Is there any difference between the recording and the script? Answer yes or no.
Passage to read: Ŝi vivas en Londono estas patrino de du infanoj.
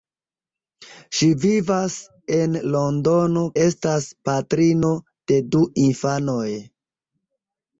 no